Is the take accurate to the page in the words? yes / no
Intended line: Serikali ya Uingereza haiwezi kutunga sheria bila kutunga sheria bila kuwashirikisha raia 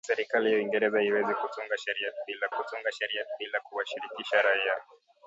yes